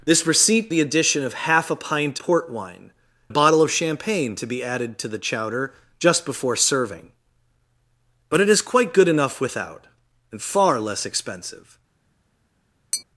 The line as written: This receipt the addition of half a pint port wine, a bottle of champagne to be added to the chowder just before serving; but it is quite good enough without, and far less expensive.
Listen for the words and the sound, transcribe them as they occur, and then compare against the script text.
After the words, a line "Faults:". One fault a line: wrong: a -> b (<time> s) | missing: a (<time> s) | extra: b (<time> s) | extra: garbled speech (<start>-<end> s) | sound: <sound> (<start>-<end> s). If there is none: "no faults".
This receipt the addition of half a pint port wine, a bottle of champagne to be added to the chowder just before serving; but it is quite good enough without, and far less expensive.
Faults:
sound: tap (12.9-13.0 s)